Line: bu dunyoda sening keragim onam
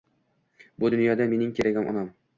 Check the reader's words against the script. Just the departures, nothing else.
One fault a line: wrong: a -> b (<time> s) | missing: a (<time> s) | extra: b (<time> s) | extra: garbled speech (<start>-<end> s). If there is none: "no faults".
wrong: sening -> mening (1.3 s)